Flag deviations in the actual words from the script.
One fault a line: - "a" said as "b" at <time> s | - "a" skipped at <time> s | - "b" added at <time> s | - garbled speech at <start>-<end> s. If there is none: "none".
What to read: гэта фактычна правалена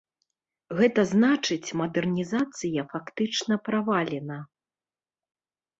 - "значыць мадэрнізацыя" added at 1.1 s